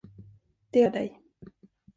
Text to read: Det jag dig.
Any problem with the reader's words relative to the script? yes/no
no